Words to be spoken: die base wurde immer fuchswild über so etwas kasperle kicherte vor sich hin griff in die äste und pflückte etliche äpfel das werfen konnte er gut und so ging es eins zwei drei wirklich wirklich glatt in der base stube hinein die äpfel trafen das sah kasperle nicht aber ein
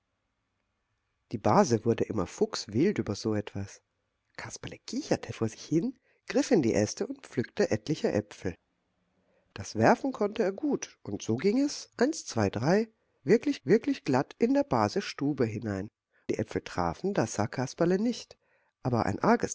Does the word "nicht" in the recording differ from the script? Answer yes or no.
no